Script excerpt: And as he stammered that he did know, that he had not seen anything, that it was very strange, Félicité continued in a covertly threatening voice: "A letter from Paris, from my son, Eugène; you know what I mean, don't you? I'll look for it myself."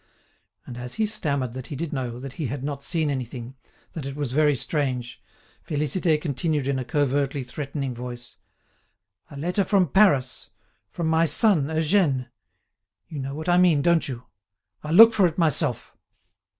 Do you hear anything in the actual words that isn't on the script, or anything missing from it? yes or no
no